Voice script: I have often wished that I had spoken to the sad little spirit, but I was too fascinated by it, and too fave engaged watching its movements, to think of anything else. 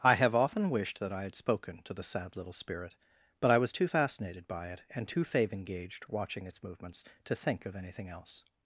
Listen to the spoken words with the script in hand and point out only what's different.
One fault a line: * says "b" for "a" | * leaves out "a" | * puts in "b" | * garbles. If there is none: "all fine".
all fine